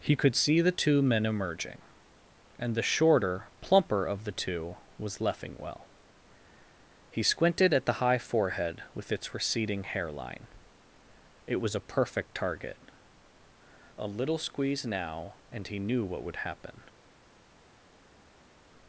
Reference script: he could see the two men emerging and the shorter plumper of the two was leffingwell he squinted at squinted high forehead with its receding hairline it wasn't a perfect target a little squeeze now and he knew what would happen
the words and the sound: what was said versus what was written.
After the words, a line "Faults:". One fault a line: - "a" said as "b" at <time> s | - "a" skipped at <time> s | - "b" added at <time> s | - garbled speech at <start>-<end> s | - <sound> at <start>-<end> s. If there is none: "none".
he could see the two men emerging and the shorter plumper of the two was leffingwell he squinted at the high forehead with its receding hairline it was a perfect target a little squeeze now and he knew what would happen
Faults:
- "squinted" said as "the" at 7.8 s
- "wasn't" said as "was" at 11.6 s